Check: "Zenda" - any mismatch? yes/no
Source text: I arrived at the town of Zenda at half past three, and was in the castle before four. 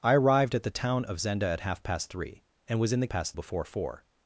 no